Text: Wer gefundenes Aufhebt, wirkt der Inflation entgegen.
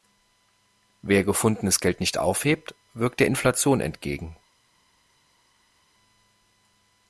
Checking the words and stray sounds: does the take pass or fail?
fail